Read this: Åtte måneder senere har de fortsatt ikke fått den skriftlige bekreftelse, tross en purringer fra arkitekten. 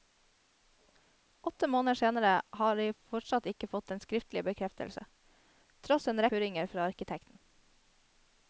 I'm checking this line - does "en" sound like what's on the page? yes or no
yes